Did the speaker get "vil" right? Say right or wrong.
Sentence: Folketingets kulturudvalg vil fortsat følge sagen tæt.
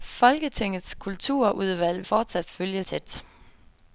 wrong